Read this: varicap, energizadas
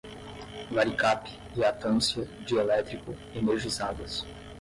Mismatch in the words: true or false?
true